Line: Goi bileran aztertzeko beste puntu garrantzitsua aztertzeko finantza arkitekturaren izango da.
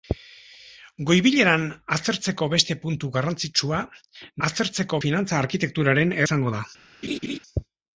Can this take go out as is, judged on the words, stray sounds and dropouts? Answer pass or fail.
fail